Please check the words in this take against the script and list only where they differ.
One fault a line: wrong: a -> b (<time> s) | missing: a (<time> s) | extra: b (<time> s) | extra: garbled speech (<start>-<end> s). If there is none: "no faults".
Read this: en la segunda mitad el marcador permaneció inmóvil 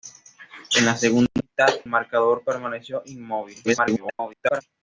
missing: el (1.7 s)
extra: garbled speech (3.6-4.6 s)